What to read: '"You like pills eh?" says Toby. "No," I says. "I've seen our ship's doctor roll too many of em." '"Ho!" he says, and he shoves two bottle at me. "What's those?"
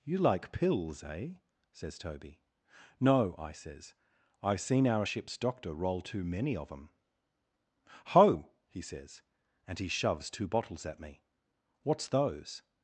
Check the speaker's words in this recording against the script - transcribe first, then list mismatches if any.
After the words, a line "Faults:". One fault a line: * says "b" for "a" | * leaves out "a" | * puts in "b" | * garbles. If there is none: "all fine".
'"You like pills eh?" says Toby. "No," I says. "I've seen our ship's doctor roll too many of em." '"Ho!" he says, and he shoves two bottles at me. "What's those?"
Faults:
* says "bottles" for "bottle"